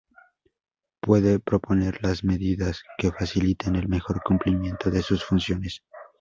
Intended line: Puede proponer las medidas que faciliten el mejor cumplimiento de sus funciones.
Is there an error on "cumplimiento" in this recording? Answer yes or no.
no